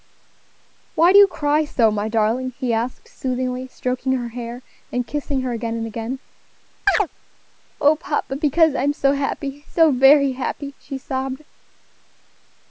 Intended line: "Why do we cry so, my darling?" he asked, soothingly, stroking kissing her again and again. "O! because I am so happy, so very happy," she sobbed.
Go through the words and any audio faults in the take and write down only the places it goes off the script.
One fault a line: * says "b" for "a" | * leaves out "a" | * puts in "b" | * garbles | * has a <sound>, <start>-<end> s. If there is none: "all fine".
* says "you" for "we"
* puts in "her hair and"
* has a chirp, 6.9-7.1 s
* puts in "papa"